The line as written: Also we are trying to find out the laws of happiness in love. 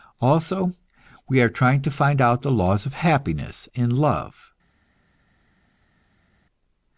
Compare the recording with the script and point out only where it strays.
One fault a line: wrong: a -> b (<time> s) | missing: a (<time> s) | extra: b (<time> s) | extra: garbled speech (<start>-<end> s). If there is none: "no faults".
no faults